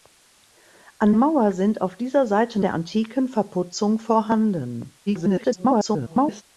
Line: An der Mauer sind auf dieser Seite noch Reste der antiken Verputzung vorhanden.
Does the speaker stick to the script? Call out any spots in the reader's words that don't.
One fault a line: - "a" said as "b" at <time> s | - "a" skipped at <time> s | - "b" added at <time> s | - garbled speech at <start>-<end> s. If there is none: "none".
- "der" skipped at 1.1 s
- "noch Reste" skipped at 2.6 s
- garbled speech at 5.1-6.4 s